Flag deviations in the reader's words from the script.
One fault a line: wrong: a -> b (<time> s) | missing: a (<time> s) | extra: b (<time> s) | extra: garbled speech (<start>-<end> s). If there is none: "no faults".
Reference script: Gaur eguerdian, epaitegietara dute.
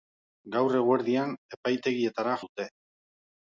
no faults